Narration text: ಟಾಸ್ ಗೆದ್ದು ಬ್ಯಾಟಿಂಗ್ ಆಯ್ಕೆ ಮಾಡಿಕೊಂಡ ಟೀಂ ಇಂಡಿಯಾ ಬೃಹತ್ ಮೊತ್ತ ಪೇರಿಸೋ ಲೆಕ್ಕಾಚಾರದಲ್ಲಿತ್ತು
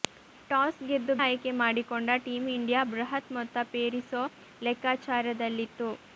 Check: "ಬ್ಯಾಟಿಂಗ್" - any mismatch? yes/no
yes